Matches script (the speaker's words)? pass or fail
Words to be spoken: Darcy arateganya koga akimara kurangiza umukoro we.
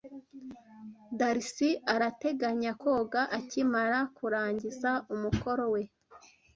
pass